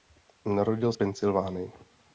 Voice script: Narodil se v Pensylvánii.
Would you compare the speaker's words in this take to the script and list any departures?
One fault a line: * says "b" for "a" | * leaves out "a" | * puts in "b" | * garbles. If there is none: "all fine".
* leaves out "se"